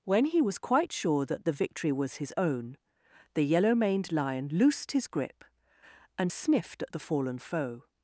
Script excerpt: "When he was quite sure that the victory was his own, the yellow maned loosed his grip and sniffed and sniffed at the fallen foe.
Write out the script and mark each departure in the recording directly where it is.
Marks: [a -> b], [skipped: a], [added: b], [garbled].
"When he was quite sure that the victory was his own, the yellow maned [added: lion] loosed his grip and sniffed [skipped: and sniffed] at the fallen foe.